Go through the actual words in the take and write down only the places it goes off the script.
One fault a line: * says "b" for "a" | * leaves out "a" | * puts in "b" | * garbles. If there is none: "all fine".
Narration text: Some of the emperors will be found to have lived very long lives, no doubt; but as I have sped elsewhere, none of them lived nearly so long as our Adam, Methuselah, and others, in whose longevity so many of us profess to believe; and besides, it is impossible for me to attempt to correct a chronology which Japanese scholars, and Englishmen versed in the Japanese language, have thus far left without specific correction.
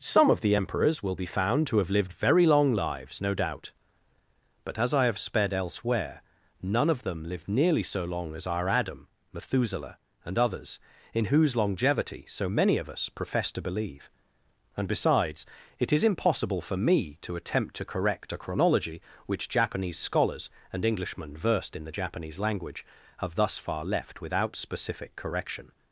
all fine